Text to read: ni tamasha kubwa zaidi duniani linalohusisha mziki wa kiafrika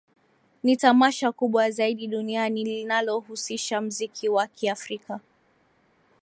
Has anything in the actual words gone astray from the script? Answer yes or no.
no